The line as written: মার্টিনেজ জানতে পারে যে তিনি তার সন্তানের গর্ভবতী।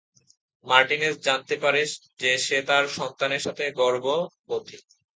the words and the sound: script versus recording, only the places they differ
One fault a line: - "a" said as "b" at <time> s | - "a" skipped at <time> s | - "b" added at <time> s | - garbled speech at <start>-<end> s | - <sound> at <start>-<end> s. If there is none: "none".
- "তিনি" said as "সে" at 2.4 s
- "সাথে" added at 3.4 s